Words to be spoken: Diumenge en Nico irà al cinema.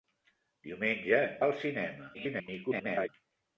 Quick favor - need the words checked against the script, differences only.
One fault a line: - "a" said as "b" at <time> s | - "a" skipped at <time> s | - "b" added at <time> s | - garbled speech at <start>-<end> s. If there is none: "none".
- "Nico irà" skipped at 1.4 s
- garbled speech at 2.1-3.1 s